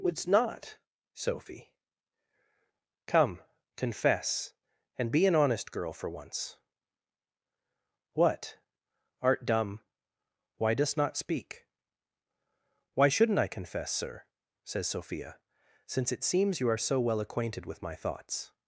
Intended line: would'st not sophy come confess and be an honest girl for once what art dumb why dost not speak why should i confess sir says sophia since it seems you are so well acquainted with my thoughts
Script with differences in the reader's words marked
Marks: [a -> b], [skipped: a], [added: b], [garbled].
would'st not sophy come confess and be an honest girl for once what art dumb why dost not speak why [should -> shouldn't] i confess sir says sophia since it seems you are so well acquainted with my thoughts